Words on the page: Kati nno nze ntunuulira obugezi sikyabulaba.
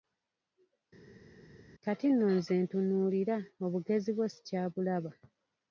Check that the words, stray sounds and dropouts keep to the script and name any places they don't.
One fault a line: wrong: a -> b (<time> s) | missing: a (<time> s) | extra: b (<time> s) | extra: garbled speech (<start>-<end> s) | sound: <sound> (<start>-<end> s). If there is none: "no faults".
extra: bwo (4.2 s)